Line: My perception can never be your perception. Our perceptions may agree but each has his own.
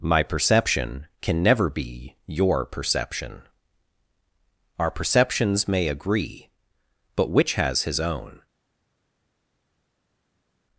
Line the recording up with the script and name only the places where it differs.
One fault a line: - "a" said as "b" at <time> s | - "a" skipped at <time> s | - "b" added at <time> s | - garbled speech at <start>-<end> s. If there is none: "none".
- "each" said as "which" at 7.3 s